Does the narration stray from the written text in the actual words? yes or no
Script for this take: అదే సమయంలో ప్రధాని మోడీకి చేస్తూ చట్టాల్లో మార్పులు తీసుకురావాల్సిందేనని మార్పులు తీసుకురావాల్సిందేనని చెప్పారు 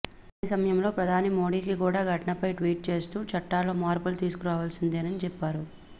yes